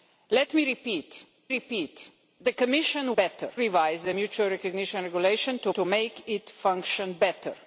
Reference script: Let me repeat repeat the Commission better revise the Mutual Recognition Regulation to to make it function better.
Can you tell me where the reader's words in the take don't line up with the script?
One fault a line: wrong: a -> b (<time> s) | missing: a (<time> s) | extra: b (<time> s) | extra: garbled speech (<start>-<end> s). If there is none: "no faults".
no faults